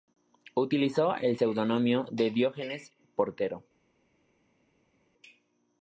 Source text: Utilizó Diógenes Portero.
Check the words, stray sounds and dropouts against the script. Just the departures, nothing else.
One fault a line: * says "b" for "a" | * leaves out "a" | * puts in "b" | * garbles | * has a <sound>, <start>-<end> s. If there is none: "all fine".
* puts in "el seudónimo de"